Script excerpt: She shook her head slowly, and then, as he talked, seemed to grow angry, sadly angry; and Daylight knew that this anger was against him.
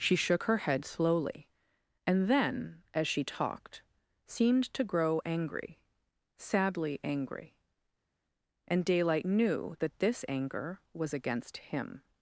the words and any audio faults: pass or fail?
fail